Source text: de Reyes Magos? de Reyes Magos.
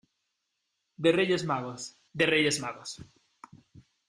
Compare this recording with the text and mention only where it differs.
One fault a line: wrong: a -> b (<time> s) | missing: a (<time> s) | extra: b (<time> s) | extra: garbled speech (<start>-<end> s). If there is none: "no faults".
no faults